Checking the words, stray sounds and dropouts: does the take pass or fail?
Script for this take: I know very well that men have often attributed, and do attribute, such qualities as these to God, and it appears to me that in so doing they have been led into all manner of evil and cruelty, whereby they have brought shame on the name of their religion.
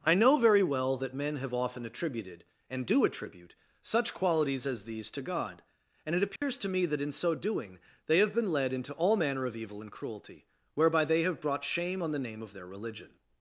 fail